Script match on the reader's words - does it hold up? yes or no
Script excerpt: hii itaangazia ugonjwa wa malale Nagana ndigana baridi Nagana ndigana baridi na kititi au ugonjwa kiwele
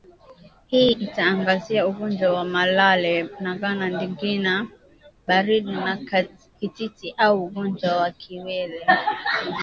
no